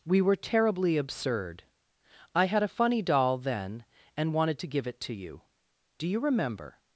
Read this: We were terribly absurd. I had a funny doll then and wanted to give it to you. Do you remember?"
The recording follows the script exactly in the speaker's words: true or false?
true